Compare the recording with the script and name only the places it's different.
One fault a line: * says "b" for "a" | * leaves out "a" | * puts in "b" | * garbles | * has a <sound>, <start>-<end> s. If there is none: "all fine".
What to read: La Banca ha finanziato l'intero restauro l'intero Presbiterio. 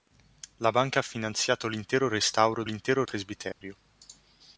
* has a dropout, 3.5-3.6 s